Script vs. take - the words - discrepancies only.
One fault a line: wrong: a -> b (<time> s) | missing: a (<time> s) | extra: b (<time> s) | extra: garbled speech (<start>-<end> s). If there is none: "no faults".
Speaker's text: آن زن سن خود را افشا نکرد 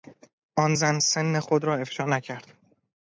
no faults